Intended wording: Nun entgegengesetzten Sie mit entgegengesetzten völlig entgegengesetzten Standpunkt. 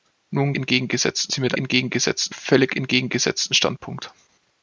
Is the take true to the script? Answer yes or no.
yes